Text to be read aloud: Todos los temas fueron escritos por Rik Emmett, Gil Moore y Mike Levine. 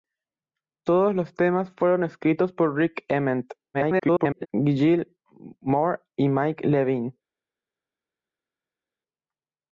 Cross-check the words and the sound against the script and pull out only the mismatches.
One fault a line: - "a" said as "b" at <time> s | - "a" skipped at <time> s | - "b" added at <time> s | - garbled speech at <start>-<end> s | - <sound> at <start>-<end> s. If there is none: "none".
- garbled speech at 3.7-4.5 s